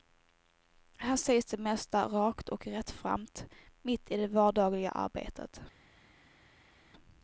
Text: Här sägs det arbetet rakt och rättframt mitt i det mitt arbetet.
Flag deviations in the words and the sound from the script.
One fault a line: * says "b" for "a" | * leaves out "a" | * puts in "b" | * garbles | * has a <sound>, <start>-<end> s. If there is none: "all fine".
* says "mesta" for "arbetet"
* says "vardagliga" for "mitt"